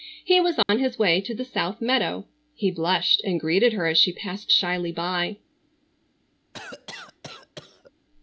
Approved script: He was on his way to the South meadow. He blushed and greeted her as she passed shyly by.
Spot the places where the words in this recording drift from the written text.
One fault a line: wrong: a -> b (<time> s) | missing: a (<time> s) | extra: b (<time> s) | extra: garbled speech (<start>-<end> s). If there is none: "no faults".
no faults